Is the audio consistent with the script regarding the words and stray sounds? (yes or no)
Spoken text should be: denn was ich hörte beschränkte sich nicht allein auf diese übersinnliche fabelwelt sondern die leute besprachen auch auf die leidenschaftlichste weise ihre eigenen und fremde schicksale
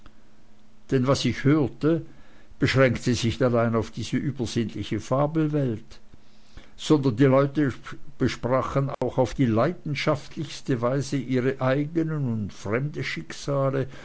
no